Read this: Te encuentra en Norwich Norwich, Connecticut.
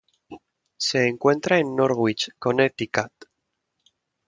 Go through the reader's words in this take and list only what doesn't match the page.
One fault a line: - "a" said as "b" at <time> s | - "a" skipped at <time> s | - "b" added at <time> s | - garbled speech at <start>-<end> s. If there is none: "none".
- "Te" said as "Se" at 0.8 s
- "Norwich" skipped at 2.3 s